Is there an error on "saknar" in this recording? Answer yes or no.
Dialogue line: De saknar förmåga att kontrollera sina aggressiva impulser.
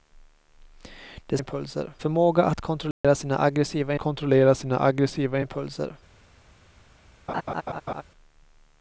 yes